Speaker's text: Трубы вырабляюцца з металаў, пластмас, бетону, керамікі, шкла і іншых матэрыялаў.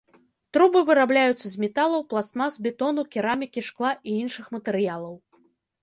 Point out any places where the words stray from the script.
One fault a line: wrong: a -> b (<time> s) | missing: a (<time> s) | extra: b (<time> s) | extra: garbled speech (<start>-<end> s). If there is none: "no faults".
no faults